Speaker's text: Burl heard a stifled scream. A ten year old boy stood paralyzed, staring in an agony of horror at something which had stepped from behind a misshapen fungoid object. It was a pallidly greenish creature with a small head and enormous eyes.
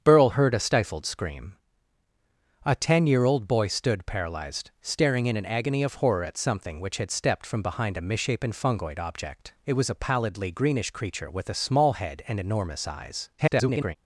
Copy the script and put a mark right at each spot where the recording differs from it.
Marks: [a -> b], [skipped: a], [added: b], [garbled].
Burl heard a stifled scream. A ten year old boy stood paralyzed, staring in an agony of horror at something which had stepped from behind a misshapen fungoid object. It was a pallidly greenish creature with a small head and enormous eyes. [garbled]